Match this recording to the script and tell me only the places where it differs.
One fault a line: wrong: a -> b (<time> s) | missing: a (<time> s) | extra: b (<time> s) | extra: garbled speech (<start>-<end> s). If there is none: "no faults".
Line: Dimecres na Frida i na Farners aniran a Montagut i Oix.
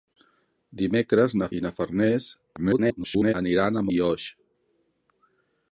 missing: Frida (1.5 s)
extra: garbled speech (2.6-3.3 s)
missing: Montagut (3.8 s)